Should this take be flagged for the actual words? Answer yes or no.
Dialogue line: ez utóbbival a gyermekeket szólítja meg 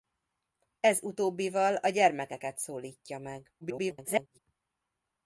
yes